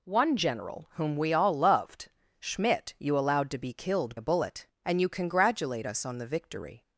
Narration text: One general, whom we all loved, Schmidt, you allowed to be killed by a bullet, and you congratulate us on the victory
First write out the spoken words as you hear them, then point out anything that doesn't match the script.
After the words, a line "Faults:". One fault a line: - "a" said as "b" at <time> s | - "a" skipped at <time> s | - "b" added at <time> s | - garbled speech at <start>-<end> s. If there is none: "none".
One general, whom we all loved, Schmidt, you allowed to be killed a bullet, and you congratulate us on the victory
Faults:
- "by" skipped at 4.1 s